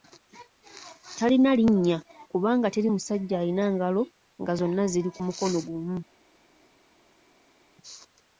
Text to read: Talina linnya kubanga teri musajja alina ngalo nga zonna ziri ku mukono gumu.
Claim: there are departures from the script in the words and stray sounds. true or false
false